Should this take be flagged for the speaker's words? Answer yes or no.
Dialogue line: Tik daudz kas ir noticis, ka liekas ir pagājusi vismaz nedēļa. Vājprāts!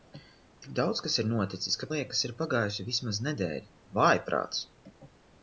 no